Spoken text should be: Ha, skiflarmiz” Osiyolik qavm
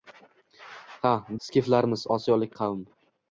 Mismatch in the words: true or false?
false